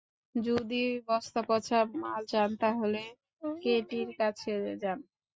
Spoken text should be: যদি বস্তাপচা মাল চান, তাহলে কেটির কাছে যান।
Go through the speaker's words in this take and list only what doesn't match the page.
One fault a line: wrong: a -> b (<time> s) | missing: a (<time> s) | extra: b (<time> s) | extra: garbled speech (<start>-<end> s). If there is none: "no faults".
no faults